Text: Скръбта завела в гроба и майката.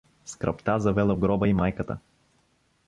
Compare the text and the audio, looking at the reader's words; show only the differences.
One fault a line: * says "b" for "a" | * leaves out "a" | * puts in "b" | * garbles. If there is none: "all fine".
all fine